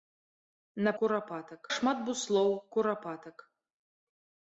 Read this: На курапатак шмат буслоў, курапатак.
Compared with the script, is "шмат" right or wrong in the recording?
right